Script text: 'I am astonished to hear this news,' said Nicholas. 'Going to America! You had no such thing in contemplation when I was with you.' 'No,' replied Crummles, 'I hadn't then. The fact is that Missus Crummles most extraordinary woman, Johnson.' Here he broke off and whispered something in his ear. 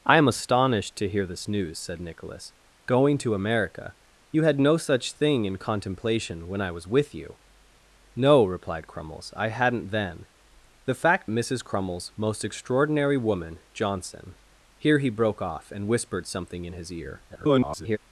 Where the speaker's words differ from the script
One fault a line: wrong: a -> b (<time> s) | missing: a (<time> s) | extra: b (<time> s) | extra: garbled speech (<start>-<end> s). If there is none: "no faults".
missing: is that (11.3 s)
extra: garbled speech (17.3-18.0 s)